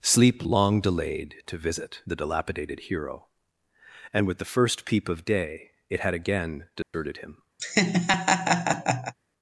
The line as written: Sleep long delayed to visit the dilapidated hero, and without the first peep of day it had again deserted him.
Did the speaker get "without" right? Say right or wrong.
wrong